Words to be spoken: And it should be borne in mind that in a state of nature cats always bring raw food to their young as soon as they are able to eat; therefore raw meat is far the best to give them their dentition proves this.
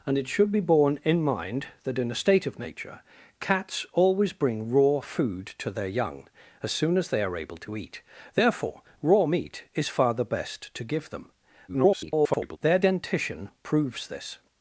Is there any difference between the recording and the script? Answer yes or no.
yes